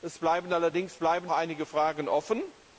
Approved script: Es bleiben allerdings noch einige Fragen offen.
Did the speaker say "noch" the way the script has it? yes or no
no